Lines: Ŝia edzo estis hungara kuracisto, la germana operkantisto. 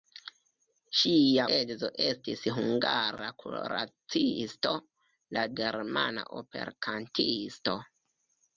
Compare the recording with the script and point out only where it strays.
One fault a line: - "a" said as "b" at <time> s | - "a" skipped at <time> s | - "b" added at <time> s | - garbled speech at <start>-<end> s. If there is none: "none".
none